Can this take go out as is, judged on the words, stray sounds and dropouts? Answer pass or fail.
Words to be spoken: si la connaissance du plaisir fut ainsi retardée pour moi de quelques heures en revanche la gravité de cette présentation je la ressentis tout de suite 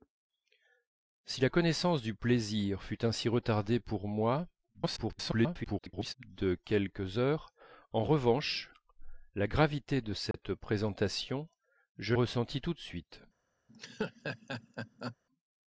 fail